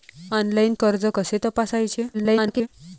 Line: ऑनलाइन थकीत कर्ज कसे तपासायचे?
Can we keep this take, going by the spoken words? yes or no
no